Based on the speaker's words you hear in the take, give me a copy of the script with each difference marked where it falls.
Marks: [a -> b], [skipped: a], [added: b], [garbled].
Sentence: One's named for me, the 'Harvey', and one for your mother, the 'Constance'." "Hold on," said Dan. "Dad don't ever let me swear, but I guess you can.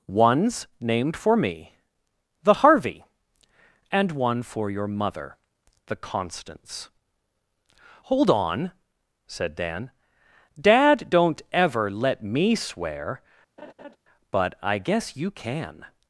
One's named for me, the 'Harvey', and one for your mother, the 'Constance'." "Hold on," said Dan. "Dad don't ever let me swear, but I guess you can.